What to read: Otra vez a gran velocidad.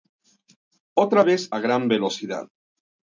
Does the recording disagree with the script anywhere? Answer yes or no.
no